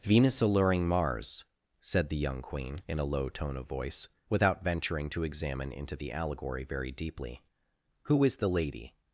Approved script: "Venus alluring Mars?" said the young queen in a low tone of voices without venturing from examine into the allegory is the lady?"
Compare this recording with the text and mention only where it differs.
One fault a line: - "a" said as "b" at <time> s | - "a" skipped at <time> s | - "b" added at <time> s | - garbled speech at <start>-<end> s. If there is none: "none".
- "voices" said as "voice" at 3.7 s
- "from" said as "to" at 5.1 s
- "very deeply Who" added at 6.6 s